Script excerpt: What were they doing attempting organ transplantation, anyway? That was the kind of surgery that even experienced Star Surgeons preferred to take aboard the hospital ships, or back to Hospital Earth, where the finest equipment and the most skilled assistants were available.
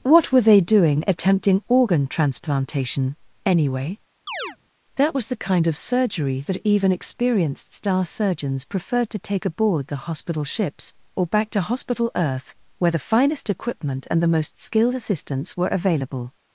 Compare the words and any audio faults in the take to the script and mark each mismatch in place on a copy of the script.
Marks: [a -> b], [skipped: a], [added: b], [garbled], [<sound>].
What were they doing attempting organ transplantation, anyway? [chirp] That was the kind of surgery that even experienced Star Surgeons preferred to take aboard the hospital ships, or back to Hospital Earth, where the finest equipment and the most skilled assistants were available.